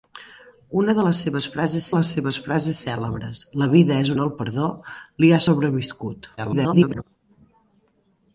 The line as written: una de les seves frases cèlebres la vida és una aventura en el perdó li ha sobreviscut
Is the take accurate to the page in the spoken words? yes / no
no